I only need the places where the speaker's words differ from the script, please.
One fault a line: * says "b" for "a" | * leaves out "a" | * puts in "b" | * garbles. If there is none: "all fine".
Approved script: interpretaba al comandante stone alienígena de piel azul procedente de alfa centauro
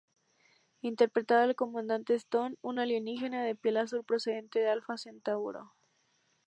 * puts in "un"